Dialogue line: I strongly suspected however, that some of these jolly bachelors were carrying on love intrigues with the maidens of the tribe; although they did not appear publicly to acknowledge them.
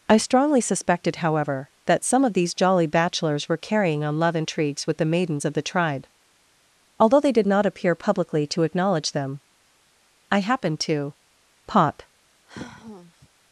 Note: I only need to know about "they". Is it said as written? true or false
true